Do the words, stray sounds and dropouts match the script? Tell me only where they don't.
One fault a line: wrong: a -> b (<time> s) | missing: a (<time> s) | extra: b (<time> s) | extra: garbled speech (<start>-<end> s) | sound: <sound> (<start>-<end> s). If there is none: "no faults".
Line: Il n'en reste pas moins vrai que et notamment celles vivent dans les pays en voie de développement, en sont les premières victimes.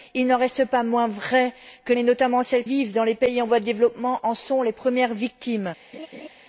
sound: laugh (5.9-6.3 s)